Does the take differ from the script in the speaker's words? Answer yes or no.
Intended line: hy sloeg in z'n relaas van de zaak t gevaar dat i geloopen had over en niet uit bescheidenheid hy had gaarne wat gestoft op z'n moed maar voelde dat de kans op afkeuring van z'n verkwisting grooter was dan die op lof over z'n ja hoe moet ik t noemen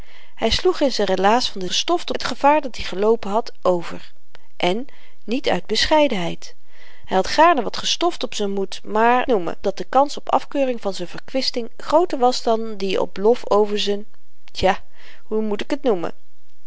yes